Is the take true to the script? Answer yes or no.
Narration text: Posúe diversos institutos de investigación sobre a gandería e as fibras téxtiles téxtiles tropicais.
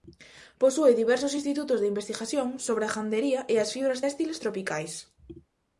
no